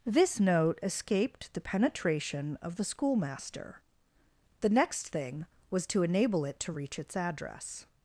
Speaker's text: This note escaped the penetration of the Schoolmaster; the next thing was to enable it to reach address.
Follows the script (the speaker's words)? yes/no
no